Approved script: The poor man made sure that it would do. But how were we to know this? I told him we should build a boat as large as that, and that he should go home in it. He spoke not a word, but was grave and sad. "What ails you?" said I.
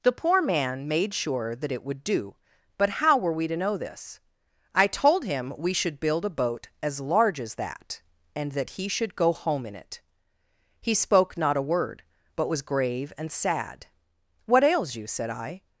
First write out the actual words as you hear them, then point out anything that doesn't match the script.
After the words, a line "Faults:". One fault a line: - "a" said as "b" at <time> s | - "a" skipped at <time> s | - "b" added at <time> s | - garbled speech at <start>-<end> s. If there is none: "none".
The poor man made sure that it would do. But how were we to know this? I told him we should build a boat as large as that, and that he should go home in it. He spoke not a word, but was grave and sad. "What ails you?" said I.
Faults:
none